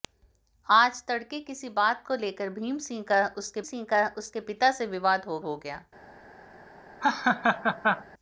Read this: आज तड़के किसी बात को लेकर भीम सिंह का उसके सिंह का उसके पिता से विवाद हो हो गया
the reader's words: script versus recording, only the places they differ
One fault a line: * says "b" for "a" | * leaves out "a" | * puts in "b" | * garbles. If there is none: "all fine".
all fine